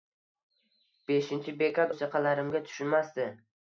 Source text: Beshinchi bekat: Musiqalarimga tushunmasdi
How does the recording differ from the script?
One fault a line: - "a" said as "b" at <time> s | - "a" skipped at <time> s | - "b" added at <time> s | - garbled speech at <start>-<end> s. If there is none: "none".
none